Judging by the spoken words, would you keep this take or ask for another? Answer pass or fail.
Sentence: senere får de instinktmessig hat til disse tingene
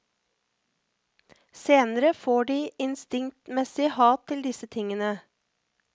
pass